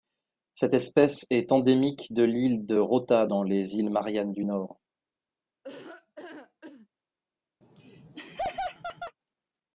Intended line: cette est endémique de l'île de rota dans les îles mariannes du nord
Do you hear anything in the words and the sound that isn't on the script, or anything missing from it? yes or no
yes